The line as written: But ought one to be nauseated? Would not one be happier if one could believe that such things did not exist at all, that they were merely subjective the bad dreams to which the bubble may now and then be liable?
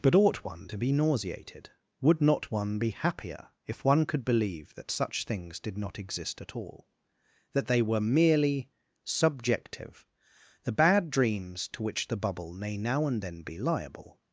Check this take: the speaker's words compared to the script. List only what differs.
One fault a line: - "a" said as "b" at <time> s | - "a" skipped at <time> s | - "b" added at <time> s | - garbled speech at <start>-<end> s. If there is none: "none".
none